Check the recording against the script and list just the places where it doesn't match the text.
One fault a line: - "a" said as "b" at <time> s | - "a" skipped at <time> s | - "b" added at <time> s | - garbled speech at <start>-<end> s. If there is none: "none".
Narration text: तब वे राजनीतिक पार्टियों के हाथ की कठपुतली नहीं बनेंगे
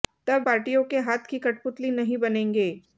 - "वे राजनीतिक" skipped at 0.5 s